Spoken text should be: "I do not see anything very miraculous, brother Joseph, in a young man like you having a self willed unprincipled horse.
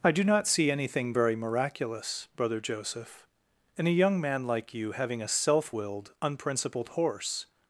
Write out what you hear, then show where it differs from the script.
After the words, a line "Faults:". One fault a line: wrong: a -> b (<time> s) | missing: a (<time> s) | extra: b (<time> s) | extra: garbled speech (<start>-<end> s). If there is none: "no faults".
"I do not see anything very miraculous, brother Joseph, in a young man like you having a self willed unprincipled horse.
Faults:
no faults